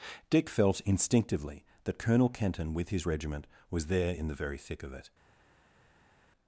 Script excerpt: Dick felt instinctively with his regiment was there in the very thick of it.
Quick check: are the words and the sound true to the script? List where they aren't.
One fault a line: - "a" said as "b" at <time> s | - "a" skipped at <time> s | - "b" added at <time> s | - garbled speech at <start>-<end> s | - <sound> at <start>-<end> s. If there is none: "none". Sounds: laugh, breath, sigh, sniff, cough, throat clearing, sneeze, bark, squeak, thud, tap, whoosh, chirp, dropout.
- "that Colonel Kenton" added at 1.8 s